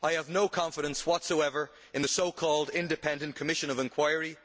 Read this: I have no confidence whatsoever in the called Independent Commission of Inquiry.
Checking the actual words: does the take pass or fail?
fail